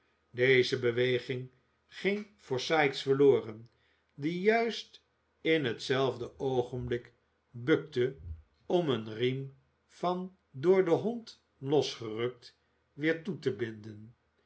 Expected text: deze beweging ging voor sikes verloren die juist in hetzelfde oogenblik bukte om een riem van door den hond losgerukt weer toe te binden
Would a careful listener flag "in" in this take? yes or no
no